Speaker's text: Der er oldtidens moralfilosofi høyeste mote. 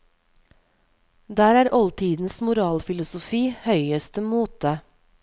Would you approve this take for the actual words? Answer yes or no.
yes